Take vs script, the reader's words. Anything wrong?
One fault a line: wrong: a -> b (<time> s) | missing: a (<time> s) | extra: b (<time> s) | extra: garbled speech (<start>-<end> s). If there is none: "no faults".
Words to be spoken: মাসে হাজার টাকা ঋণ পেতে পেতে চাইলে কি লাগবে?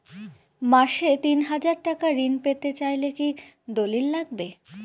extra: তিন (1.2 s)
missing: পেতে (2.7 s)
extra: দলিল (3.7 s)